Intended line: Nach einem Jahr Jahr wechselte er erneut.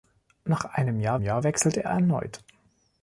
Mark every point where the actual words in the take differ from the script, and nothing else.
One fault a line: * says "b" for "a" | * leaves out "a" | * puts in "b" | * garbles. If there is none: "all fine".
all fine